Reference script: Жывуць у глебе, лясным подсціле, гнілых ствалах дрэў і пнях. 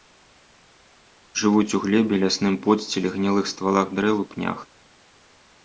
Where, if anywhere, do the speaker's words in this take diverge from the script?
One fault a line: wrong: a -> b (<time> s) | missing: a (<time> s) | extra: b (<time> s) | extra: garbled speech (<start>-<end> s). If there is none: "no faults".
no faults